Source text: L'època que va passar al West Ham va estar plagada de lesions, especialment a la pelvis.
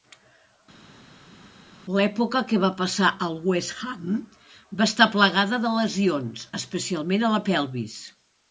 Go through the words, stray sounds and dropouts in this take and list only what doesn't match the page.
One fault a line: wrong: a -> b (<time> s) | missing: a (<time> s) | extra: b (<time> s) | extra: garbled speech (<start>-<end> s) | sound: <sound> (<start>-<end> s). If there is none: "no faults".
no faults